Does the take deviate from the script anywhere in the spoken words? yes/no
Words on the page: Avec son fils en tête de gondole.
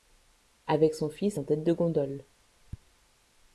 no